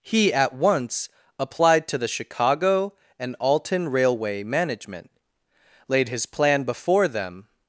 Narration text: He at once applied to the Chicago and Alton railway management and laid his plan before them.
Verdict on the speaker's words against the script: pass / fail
fail